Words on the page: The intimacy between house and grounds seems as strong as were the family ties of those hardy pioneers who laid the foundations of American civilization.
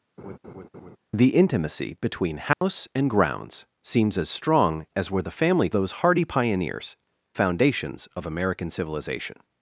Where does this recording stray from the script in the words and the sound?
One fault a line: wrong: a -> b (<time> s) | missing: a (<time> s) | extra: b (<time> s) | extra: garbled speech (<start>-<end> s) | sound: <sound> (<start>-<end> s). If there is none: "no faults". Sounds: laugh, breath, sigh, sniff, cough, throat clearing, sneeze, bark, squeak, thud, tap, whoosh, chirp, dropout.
sound: laugh (0.2-1.0 s)
sound: dropout (2.5-2.6 s)
missing: ties of (5.7 s)
missing: who laid the (7.0 s)